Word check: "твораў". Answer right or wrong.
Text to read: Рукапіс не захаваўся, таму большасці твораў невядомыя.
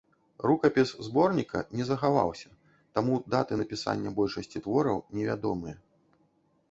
right